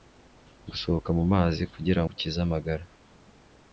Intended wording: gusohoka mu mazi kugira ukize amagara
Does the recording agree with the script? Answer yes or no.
yes